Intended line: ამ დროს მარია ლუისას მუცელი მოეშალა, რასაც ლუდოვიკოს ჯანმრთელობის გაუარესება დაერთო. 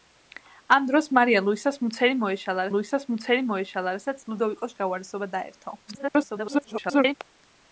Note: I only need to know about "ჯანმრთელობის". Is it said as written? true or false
false